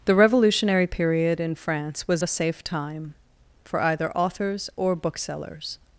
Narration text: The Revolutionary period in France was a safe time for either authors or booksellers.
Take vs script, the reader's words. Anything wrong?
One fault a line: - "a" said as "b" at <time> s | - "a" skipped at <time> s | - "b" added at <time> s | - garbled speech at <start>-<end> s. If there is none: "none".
none